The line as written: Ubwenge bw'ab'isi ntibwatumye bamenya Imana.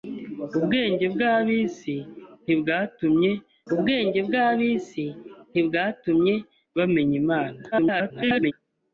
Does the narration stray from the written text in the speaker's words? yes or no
yes